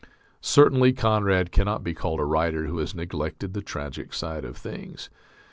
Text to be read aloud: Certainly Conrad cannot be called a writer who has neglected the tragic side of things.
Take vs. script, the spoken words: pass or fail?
pass